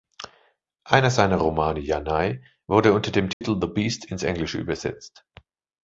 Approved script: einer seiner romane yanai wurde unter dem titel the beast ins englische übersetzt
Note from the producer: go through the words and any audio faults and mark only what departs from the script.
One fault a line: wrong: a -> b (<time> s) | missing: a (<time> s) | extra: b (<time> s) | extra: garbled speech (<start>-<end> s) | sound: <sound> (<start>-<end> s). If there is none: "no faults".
sound: dropout (3.3-3.4 s)